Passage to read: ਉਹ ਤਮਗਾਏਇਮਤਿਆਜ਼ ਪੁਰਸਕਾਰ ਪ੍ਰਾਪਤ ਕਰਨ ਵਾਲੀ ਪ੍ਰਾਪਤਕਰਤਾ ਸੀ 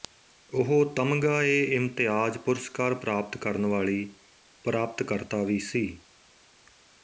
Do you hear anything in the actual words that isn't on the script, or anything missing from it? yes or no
yes